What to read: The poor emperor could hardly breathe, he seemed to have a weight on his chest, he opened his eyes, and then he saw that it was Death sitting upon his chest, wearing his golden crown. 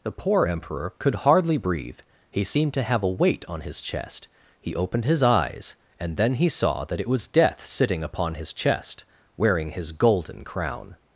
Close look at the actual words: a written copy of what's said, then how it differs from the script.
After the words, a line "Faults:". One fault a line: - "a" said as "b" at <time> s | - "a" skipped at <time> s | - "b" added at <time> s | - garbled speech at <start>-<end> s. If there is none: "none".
The poor emperor could hardly breathe, he seemed to have a weight on his chest, he opened his eyes, and then he saw that it was Death sitting upon his chest, wearing his golden crown.
Faults:
none